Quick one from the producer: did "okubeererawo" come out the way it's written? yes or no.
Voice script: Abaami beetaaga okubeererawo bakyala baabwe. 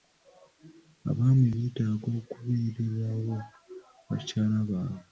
yes